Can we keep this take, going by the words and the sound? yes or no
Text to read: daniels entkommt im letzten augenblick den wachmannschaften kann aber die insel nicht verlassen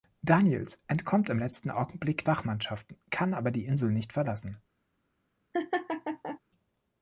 no